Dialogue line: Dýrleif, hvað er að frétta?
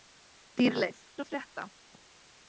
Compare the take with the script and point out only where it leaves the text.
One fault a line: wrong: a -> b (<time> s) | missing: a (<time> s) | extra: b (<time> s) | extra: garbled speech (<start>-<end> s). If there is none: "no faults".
missing: hvað (1.0 s)